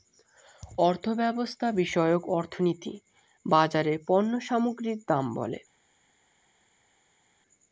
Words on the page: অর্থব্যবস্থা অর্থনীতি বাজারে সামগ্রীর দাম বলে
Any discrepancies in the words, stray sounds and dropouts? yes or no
yes